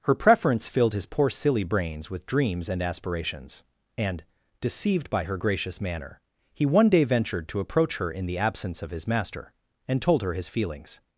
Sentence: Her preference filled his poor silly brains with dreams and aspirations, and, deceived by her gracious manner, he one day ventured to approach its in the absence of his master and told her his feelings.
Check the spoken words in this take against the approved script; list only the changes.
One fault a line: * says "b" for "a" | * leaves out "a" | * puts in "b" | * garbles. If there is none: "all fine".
* says "her" for "its"